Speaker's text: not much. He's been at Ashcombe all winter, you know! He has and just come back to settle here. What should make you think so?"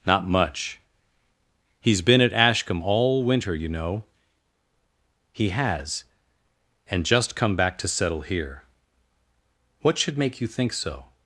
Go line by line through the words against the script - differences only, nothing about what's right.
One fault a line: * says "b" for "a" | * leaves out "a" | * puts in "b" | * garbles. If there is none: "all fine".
all fine